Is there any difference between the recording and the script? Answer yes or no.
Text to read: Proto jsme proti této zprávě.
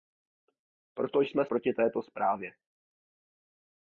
no